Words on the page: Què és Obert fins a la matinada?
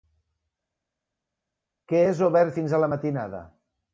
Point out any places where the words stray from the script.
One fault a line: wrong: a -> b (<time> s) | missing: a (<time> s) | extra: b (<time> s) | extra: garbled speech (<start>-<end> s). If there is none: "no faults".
no faults